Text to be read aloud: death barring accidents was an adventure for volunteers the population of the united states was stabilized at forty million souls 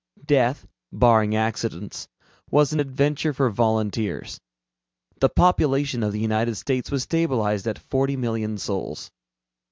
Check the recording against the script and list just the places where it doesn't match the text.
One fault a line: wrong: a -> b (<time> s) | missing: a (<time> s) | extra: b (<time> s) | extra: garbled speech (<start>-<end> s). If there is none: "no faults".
no faults